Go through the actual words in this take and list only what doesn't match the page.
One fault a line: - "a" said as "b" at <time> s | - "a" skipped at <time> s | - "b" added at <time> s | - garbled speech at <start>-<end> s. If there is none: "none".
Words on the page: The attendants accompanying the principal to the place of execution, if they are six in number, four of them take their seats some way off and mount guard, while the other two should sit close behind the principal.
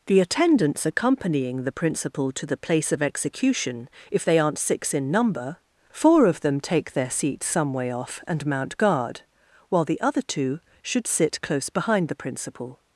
- "are" said as "aren't" at 4.4 s